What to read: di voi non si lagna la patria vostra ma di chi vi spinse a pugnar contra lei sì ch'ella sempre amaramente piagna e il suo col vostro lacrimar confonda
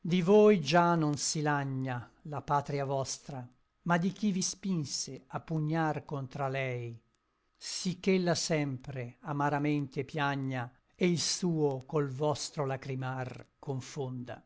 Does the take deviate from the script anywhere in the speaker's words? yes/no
yes